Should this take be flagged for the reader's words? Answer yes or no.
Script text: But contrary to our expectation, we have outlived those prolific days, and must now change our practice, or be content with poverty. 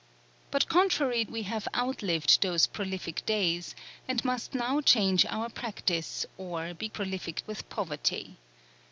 yes